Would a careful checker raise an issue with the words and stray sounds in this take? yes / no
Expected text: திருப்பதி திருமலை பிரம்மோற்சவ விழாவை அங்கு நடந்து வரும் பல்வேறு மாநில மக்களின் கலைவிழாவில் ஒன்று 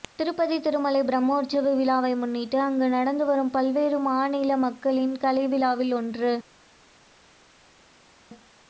yes